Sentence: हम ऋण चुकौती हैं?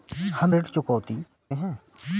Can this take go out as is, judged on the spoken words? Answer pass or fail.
pass